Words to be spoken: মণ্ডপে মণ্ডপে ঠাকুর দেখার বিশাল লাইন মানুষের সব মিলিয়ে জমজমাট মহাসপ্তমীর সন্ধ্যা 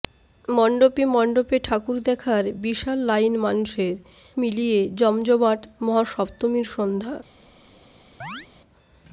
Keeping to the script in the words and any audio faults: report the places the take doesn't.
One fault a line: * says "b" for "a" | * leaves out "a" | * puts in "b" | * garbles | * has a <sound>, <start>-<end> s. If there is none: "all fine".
* leaves out "সব"
* has a chirp, 8.2-8.5 s